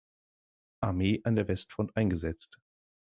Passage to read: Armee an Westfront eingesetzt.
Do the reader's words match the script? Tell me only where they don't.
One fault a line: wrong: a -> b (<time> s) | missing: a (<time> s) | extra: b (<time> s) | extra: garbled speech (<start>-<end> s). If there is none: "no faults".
extra: der (1.4 s)